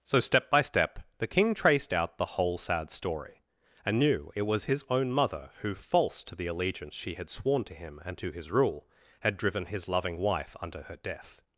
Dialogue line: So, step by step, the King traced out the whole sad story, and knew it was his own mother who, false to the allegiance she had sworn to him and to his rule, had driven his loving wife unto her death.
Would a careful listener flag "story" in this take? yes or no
no